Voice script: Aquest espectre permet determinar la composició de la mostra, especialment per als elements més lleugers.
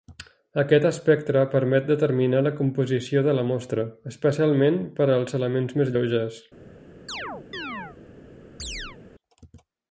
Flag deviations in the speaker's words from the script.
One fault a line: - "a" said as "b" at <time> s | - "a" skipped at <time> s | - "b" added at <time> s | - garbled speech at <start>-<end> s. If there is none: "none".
none